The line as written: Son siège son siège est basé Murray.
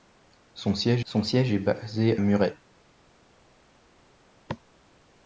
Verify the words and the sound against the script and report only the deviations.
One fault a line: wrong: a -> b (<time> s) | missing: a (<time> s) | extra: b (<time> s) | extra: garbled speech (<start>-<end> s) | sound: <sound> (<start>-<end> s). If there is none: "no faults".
no faults